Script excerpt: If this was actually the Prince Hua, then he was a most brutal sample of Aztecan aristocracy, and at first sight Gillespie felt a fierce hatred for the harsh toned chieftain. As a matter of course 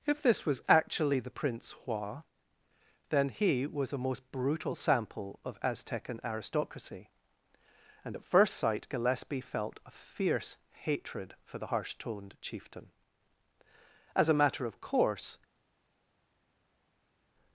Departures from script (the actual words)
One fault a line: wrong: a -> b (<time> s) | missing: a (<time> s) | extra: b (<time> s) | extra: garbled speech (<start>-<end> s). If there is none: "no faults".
no faults